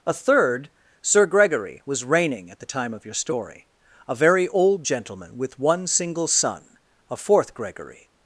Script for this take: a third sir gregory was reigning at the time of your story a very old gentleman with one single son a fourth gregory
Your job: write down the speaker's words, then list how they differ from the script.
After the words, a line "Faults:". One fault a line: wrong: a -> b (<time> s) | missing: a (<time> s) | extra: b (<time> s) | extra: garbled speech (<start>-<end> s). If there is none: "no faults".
a third sir gregory was reigning at the time of your story a very old gentleman with one single son a fourth gregory
Faults:
no faults